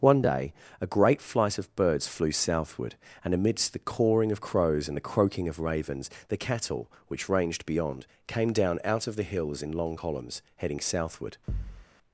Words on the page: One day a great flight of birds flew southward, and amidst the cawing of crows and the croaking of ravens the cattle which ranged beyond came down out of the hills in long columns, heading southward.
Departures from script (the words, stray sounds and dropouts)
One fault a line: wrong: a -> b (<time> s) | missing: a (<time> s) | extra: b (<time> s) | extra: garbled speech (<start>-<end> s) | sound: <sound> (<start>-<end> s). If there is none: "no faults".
sound: thud (11.5-11.9 s)